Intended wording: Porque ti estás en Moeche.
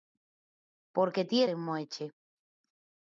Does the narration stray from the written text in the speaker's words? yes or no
yes